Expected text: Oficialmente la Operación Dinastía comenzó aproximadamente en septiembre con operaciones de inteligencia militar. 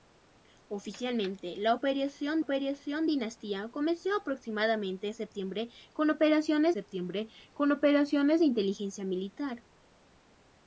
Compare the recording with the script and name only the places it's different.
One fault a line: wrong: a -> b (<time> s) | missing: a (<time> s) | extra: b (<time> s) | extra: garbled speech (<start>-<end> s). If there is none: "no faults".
extra: Operación (2.4 s)
extra: septiembre con operaciones (6.7 s)